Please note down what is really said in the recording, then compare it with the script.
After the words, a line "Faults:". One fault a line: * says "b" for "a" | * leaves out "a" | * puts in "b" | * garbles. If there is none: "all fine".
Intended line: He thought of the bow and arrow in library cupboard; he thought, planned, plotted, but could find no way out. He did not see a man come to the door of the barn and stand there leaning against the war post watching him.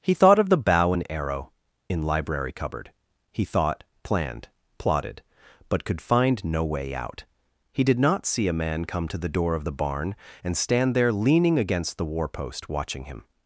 He thought of the bow and arrow in library cupboard; he thought, planned, plotted, but could find no way out. He did not see a man come to the door of the barn and stand there leaning against the war post watching him.
Faults:
all fine